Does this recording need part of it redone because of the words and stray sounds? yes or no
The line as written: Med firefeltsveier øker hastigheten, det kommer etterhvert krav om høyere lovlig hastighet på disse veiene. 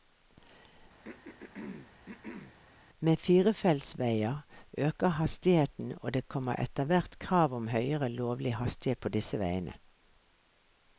yes